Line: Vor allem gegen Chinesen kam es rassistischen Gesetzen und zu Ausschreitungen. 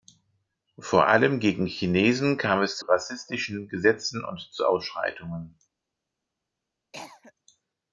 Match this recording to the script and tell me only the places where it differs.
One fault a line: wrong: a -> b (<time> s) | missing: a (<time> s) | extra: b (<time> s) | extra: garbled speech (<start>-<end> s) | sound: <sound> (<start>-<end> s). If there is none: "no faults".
sound: cough (6.9-7.3 s)